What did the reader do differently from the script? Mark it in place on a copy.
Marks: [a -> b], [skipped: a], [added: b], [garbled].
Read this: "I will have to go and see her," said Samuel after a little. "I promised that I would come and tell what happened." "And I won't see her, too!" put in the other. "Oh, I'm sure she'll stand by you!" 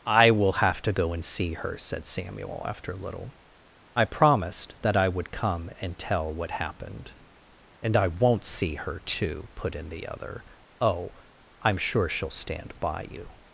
"I will have to go and see her," said Samuel after a little. "I promised that I would come and tell what happened." "And I won't see her, too!" put in the other. "Oh, I'm sure she'll stand by you!"